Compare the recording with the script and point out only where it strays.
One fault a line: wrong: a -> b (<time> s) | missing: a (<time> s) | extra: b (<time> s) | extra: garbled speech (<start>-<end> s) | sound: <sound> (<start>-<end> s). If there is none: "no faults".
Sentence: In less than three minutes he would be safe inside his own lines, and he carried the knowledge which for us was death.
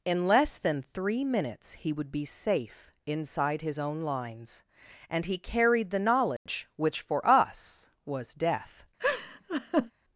sound: dropout (6.4-6.5 s)
sound: laugh (9.0-9.9 s)